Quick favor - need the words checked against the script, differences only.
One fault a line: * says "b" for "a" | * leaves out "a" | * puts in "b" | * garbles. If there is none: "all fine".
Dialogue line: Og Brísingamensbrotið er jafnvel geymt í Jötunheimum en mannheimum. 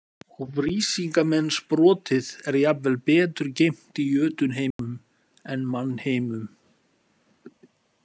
* puts in "betur"